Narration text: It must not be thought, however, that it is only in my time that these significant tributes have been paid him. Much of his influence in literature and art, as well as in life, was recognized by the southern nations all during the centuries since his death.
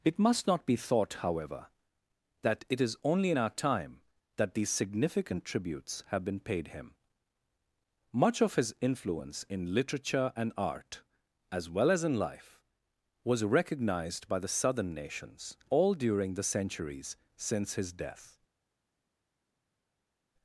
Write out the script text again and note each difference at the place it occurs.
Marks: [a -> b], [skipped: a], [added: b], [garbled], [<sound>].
It must not be thought, however, that it is only in [my -> our] time that these significant tributes have been paid him. Much of his influence in literature and art, as well as in life, was recognized by the southern nations all during the centuries since his death.